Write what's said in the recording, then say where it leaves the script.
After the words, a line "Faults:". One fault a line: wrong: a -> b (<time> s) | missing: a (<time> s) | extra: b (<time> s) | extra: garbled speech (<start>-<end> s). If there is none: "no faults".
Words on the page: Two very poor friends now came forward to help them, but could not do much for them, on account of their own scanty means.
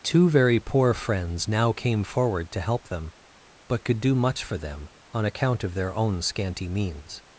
Two very poor friends now came forward to help them, but could do much for them, on account of their own scanty means.
Faults:
missing: not (4.0 s)